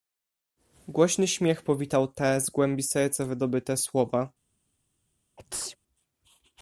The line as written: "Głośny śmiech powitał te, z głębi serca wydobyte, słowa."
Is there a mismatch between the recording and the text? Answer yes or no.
no